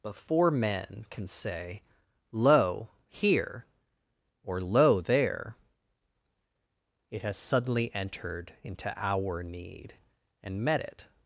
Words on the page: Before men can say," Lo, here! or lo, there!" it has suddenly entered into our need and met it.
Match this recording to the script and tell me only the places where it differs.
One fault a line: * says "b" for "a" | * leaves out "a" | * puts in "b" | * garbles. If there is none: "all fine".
all fine